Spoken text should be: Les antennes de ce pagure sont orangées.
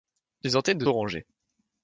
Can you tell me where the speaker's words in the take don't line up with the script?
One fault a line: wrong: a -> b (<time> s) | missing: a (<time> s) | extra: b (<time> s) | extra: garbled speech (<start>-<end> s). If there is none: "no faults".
missing: ce pagure sont (0.9 s)